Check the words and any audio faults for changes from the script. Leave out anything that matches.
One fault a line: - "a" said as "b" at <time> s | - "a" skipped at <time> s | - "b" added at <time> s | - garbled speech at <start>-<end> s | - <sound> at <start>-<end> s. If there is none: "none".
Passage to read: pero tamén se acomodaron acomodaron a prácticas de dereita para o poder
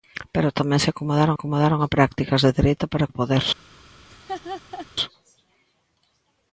- laugh at 4.1-4.9 s